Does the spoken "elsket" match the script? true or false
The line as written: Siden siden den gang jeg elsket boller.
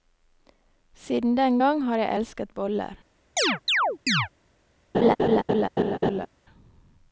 true